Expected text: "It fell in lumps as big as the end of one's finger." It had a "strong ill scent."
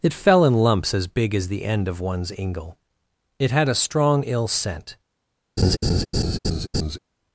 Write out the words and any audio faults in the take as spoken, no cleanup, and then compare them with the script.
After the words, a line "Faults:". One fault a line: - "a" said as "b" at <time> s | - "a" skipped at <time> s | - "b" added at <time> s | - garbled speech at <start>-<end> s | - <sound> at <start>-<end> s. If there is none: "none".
"It fell in lumps as big as the end of one's ingle." It had a "strong ill scent."
Faults:
- "finger" said as "ingle" at 2.3 s
- laugh at 5.6-7.0 s